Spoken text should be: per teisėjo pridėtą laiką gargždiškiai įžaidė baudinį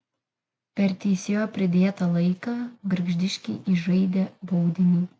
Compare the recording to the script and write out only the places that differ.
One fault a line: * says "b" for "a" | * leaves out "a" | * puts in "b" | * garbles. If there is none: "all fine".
all fine